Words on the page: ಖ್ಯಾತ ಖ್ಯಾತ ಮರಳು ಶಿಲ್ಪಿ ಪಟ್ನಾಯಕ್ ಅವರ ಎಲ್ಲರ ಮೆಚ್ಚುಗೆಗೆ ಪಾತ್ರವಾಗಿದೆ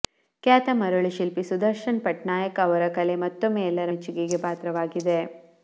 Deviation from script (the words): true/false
true